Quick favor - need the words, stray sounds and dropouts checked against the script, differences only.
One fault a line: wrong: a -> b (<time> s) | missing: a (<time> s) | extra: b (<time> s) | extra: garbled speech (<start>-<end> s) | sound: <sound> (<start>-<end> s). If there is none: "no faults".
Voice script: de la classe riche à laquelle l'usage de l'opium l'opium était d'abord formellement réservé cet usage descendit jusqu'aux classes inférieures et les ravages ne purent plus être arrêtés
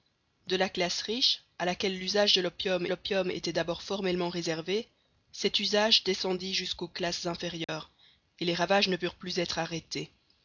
sound: dropout (7.6-7.7 s)